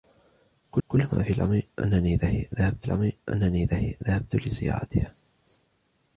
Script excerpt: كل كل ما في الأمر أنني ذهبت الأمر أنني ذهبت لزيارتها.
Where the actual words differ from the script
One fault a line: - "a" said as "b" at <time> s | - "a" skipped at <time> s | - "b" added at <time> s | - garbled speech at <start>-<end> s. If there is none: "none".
none